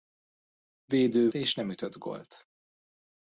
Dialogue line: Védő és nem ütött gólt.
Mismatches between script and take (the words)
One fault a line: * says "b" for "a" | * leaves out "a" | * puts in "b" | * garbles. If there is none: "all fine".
all fine